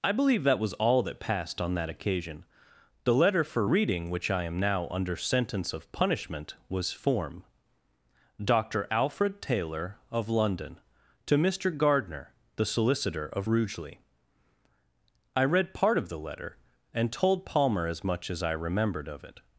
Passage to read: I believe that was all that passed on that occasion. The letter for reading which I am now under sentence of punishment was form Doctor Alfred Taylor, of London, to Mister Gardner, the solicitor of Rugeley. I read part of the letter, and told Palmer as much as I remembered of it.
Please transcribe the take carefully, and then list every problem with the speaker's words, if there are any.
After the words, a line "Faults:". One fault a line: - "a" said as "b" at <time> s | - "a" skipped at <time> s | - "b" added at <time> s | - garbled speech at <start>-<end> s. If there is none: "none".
I believe that was all that passed on that occasion. The letter for reading which I am now under sentence of punishment was form Doctor Alfred Taylor, of London, to Mister Gardner, the solicitor of Rugeley. I read part of the letter, and told Palmer as much as I remembered of it.
Faults:
none